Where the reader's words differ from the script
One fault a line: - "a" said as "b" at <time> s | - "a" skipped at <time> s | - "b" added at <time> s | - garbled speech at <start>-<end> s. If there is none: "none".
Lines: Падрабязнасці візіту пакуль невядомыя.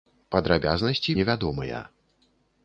- "візіту пакуль" skipped at 1.1 s